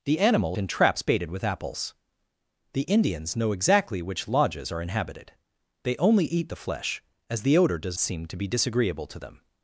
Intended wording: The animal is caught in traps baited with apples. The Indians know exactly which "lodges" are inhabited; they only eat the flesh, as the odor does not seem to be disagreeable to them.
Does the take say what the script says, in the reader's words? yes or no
no